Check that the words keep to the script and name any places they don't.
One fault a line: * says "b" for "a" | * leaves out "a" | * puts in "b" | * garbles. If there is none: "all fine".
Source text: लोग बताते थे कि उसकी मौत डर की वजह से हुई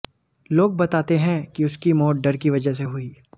* says "हैं" for "थे"